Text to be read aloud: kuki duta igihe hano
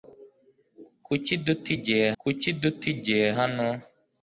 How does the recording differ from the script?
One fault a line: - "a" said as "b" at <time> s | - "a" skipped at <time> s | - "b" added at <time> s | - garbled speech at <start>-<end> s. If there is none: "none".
- "kuki duta igihe" added at 2.2 s